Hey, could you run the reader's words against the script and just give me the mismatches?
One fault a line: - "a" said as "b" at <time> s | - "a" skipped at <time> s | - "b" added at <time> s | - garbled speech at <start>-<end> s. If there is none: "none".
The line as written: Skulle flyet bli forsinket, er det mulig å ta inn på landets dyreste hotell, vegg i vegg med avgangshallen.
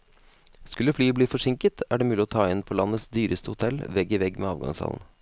none